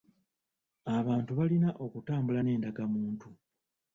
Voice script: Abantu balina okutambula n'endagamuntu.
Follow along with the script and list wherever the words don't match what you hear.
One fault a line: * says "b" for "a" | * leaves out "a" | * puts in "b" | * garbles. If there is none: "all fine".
all fine